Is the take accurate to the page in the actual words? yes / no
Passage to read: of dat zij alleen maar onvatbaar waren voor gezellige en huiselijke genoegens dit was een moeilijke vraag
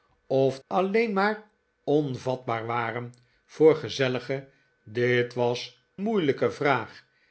no